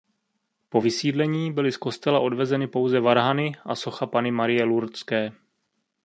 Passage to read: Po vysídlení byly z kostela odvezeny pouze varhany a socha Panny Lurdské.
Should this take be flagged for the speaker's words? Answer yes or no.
yes